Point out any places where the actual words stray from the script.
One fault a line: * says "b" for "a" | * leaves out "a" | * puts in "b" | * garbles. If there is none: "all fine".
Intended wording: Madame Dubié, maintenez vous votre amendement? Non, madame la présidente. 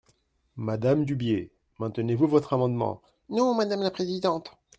all fine